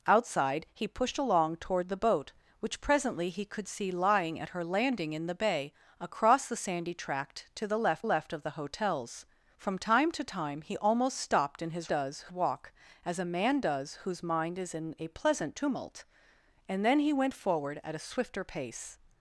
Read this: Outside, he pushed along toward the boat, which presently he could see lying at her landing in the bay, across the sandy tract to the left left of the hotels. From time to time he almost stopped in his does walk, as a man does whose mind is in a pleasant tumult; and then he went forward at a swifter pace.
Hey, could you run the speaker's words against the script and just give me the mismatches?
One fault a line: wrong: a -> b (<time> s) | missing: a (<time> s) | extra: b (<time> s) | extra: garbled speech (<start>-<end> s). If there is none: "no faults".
no faults